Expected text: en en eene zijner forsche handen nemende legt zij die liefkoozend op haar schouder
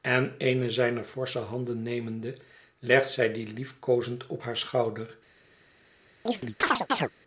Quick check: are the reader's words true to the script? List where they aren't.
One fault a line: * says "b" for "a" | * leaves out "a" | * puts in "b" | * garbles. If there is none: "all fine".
* leaves out "en"